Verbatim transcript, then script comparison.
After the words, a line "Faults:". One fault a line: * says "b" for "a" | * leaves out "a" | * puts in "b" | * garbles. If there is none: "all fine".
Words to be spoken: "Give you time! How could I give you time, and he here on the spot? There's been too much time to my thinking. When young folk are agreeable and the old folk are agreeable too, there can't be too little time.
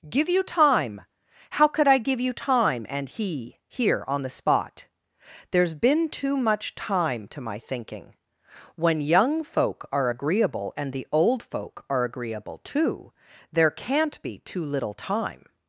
"Give you time! How could I give you time, and he here on the spot? There's been too much time to my thinking. When young folk are agreeable and the old folk are agreeable too, there can't be too little time.
Faults:
all fine